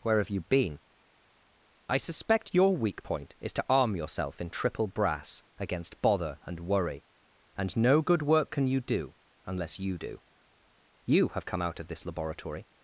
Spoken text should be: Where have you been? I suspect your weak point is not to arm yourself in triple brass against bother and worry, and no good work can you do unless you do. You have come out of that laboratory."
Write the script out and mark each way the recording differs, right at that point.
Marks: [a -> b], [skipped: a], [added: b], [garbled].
Where have you been? I suspect your weak point is [skipped: not] to arm yourself in triple brass against bother and worry, and no good work can you do unless you do. You have come out of [that -> this] laboratory."